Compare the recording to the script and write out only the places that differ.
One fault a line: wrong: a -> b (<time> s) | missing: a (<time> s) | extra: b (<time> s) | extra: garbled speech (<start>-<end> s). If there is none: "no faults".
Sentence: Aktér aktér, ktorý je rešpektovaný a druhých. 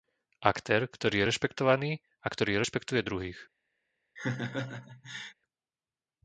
missing: aktér (0.9 s)
extra: ktorý rešpektuje (2.3 s)